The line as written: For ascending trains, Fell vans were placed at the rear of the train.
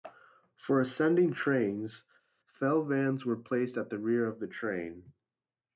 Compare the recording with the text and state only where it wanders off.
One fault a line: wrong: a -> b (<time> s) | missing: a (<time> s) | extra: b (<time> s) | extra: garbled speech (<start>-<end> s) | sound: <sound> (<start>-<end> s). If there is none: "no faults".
no faults